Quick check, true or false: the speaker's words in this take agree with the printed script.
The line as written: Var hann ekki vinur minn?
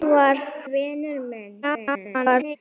false